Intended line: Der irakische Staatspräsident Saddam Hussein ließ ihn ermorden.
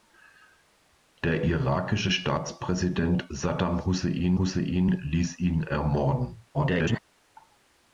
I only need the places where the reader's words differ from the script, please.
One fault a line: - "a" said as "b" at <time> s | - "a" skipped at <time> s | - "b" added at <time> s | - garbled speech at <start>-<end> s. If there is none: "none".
- "Hussein" added at 4.4 s
- garbled speech at 6.5-7.0 s